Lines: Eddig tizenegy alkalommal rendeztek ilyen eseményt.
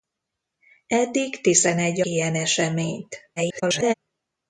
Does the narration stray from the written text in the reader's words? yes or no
yes